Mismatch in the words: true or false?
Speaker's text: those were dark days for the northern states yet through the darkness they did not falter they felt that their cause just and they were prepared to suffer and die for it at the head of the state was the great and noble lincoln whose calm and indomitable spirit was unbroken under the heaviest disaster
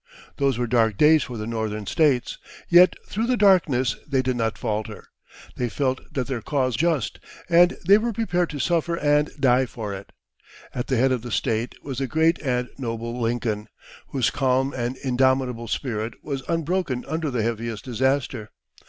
false